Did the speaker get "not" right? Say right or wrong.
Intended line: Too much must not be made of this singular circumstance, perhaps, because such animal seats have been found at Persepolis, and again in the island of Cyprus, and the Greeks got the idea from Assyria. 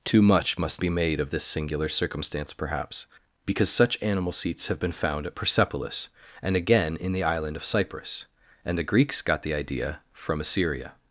wrong